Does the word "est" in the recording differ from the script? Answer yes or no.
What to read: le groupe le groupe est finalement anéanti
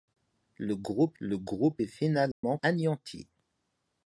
no